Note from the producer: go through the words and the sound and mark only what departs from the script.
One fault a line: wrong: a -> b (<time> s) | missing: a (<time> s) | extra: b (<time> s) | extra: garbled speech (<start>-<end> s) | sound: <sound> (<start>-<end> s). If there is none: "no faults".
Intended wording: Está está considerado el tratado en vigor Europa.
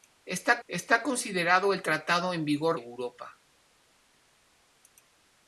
no faults